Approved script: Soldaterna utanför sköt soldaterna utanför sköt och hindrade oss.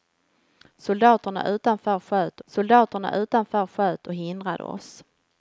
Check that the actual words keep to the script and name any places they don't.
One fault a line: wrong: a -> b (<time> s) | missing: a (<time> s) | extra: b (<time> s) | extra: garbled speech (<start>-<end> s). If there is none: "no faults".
no faults